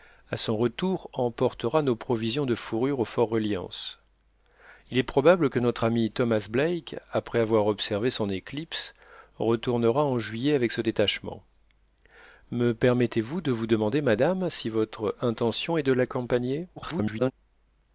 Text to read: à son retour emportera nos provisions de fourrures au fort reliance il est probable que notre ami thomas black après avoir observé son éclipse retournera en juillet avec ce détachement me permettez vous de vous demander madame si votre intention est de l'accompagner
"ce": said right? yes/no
yes